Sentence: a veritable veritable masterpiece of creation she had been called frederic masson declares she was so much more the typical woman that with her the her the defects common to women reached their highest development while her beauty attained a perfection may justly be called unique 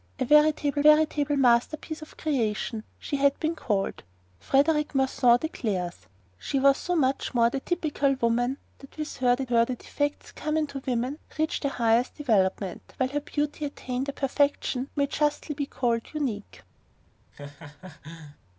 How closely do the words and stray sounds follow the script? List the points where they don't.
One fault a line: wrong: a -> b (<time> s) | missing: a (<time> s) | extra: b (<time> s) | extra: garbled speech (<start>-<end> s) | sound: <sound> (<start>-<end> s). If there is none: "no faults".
sound: laugh (17.3-18.4 s)